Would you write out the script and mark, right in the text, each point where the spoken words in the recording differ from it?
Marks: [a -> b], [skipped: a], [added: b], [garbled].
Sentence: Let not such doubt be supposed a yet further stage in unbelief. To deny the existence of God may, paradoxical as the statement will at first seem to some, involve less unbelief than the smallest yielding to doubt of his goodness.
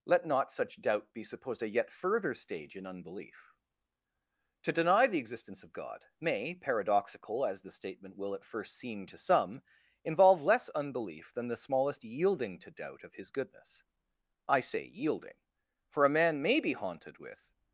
Let not such doubt be supposed a yet further stage in unbelief. To deny the existence of God may, paradoxical as the statement will at first seem to some, involve less unbelief than the smallest yielding to doubt of his goodness. [added: I say yielding for a man may be haunted with]